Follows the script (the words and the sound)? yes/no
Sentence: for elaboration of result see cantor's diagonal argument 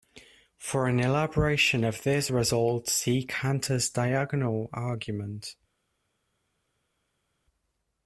no